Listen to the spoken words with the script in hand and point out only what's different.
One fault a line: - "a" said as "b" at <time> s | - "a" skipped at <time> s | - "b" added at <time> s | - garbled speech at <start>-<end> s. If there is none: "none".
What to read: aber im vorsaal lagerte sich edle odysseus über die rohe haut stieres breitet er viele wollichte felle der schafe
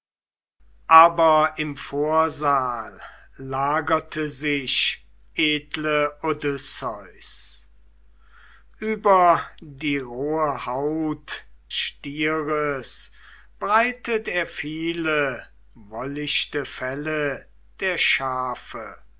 none